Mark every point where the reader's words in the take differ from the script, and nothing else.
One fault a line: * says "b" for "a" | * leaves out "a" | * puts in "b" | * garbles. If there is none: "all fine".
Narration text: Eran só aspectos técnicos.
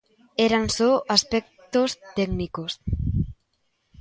all fine